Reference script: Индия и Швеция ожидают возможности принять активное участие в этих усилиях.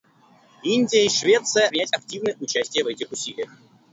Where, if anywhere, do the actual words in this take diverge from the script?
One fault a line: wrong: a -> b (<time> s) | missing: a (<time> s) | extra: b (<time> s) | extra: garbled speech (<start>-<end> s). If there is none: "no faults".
missing: ожидают возможности (1.7 s)